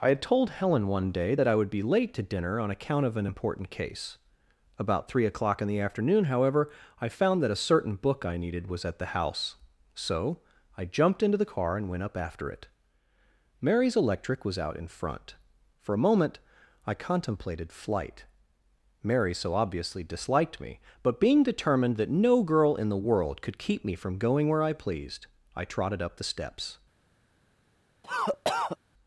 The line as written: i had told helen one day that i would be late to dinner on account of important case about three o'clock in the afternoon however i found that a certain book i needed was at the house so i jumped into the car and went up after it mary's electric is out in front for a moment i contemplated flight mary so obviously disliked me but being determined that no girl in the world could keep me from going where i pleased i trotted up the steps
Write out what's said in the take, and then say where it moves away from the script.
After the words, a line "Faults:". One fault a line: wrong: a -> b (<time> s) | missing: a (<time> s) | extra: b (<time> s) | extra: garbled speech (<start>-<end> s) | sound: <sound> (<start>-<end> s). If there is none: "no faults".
i had told helen one day that i would be late to dinner on account of an important case about three o'clock in the afternoon however i found that a certain book i needed was at the house so i jumped into the car and went up after it mary's electric was out in front for a moment i contemplated flight mary so obviously disliked me but being determined that no girl in the world could keep me from going where i pleased i trotted up the steps
Faults:
extra: an (3.2 s)
wrong: is -> was (14.4 s)
sound: cough (28.0-28.8 s)